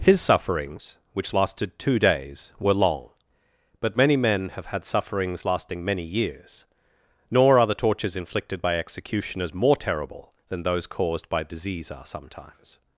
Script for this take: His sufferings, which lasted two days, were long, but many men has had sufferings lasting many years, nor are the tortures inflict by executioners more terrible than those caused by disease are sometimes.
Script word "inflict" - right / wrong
wrong